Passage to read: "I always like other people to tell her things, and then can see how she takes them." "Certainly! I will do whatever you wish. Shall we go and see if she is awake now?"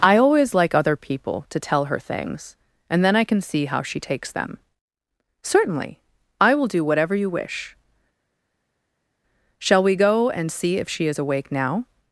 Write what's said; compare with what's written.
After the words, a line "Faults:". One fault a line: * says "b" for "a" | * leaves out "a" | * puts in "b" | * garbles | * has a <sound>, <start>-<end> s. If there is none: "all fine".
"I always like other people to tell her things, and then I can see how she takes them." "Certainly! I will do whatever you wish. Shall we go and see if she is awake now?"
Faults:
* puts in "I"